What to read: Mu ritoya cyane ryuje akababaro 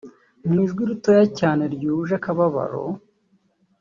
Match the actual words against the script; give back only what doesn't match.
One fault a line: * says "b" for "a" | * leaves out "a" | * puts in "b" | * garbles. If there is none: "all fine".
* puts in "ijwi"